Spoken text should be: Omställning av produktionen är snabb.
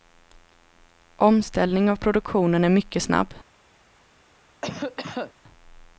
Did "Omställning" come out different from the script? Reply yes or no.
no